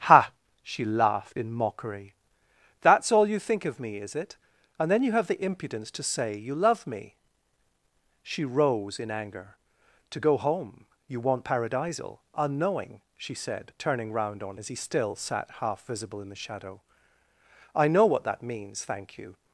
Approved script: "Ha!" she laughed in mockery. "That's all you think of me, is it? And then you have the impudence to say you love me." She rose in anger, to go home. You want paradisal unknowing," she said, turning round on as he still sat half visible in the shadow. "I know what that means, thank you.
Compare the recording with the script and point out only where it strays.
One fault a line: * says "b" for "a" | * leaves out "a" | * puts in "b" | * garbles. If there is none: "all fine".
all fine